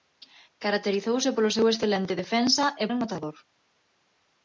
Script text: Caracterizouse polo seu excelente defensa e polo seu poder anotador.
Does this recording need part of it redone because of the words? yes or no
yes